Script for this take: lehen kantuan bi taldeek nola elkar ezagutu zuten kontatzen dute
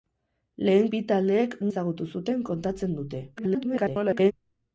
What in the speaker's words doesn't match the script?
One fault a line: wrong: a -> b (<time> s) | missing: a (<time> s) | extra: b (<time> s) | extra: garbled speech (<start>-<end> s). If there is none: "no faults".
missing: kantuan (0.9 s)
missing: nola elkar (1.6 s)
extra: garbled speech (3.4-4.3 s)